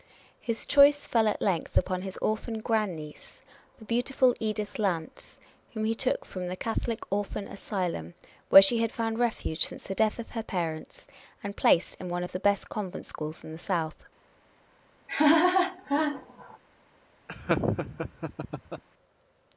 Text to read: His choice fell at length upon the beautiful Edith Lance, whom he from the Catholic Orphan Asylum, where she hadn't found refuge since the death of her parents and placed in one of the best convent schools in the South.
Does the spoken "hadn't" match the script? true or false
false